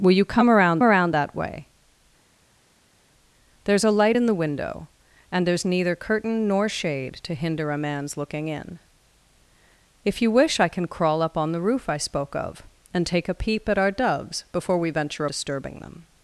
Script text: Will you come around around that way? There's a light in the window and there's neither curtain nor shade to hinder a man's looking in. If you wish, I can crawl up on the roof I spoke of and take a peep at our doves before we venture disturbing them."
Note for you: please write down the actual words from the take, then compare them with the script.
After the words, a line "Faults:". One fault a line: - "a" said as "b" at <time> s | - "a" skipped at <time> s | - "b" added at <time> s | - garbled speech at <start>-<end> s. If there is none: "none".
Will you come around around that way? There's a light in the window and there's neither curtain nor shade to hinder a man's looking in. If you wish, I can crawl up on the roof I spoke of and take a peep at our doves before we venture disturbing them."
Faults:
none